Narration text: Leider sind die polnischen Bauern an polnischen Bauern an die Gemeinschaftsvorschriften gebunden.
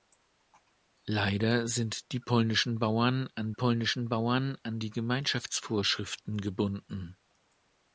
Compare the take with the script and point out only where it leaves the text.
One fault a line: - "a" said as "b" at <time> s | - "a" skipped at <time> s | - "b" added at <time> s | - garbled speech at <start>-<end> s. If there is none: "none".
none